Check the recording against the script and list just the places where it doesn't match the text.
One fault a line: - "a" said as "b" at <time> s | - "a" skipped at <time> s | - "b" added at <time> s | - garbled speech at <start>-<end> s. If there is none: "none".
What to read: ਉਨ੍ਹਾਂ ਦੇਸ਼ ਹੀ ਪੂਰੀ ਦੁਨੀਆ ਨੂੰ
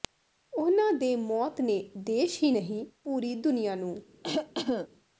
- "ਦੇ ਮੌਤ ਨੇ" added at 0.9 s
- "ਨਹੀਂ" added at 2.5 s